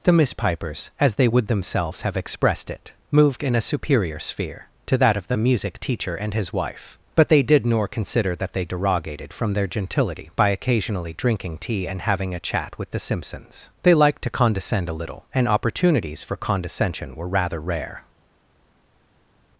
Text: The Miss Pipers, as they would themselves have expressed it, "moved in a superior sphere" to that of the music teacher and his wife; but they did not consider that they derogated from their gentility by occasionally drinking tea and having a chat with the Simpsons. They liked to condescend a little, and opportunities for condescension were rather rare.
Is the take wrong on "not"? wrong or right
wrong